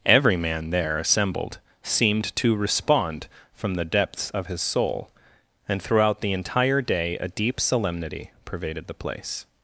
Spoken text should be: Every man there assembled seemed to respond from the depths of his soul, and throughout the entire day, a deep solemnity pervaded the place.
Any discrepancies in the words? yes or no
no